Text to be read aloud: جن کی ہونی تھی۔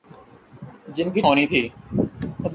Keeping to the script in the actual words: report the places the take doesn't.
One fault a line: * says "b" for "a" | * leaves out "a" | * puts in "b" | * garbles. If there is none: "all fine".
all fine